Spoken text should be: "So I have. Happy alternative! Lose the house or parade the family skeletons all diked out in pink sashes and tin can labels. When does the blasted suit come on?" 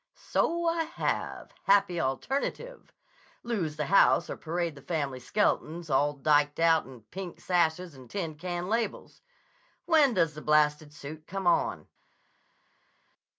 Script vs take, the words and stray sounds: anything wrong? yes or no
no